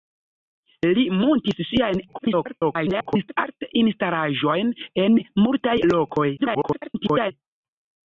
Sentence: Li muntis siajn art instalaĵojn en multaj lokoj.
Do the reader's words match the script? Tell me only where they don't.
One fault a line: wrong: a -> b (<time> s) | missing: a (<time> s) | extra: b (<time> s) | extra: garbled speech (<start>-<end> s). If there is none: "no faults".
extra: garbled speech (2.1-3.4 s)
extra: garbled speech (6.4-7.3 s)